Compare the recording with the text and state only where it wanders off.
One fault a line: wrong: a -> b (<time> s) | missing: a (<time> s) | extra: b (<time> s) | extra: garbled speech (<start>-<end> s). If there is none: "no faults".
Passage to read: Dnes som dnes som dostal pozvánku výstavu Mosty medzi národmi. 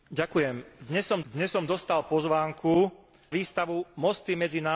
no faults